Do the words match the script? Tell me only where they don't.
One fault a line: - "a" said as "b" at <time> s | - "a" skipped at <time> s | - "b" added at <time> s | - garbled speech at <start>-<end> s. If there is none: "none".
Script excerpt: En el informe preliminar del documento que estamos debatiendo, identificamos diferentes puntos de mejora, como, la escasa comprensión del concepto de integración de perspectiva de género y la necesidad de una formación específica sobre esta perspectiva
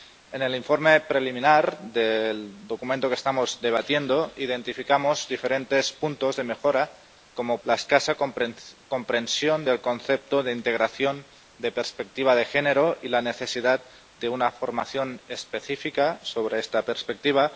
none